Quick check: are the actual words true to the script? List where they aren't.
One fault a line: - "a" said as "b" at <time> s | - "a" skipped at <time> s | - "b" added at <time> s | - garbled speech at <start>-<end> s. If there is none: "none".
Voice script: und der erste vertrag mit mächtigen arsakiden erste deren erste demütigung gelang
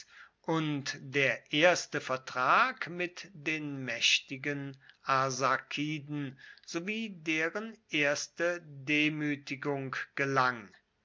- "den" added at 3.4 s
- "erste" said as "sowie" at 6.7 s